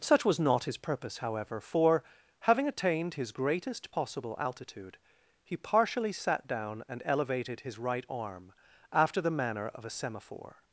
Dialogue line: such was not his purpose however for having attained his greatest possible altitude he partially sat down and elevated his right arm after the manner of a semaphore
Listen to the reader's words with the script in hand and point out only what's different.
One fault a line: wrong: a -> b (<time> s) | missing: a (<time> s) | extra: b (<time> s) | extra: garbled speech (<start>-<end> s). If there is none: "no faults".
no faults